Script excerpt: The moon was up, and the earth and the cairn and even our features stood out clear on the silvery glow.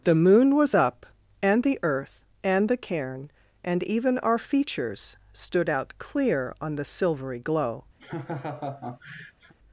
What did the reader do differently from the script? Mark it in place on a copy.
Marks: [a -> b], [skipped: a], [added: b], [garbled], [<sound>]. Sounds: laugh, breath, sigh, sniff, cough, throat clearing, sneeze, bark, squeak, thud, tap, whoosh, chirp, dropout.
The moon was up, and the earth and the cairn and even our features stood out clear on the silvery glow. [laugh]